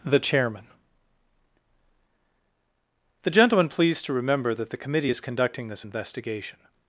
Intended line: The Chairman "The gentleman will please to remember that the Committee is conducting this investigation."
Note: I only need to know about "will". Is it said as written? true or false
false